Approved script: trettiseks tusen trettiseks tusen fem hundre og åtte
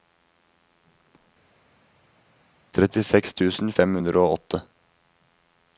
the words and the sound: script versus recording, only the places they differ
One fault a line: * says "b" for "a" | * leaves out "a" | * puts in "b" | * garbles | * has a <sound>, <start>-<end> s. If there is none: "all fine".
* leaves out "trettiseks tusen"